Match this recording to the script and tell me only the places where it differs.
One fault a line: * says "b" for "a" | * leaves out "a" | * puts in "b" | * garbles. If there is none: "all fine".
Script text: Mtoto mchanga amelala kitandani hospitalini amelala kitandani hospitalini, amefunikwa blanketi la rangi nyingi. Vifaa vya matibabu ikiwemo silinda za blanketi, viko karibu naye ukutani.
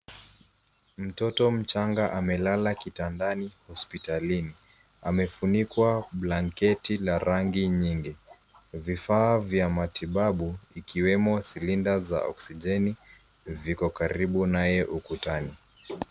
* leaves out "amelala kitandani hospitalini"
* says "oksijeni" for "blanketi"